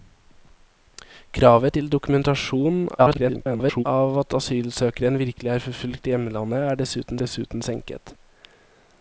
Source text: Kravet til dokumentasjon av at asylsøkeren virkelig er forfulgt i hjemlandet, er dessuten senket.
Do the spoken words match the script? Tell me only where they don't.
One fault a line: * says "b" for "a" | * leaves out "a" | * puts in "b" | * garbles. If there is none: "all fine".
* garbles
* puts in "dessuten"